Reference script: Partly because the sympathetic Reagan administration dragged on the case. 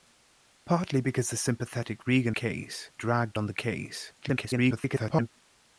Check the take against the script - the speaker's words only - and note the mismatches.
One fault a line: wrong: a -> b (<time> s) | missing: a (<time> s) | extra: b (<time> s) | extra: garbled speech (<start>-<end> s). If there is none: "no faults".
wrong: administration -> case (2.3 s)
extra: garbled speech (4.2-5.3 s)